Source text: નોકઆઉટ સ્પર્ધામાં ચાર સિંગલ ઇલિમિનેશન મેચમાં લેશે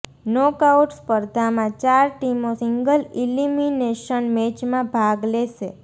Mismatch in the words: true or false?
true